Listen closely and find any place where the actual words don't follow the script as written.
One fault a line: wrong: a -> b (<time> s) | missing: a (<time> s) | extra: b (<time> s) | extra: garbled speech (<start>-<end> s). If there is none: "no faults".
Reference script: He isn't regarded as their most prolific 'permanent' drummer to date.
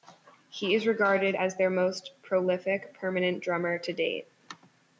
wrong: isn't -> is (0.7 s)